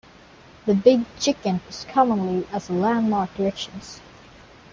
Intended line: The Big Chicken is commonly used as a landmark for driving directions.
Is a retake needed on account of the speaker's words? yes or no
yes